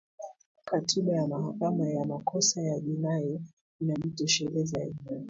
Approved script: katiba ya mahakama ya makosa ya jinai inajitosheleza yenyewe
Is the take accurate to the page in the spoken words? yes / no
yes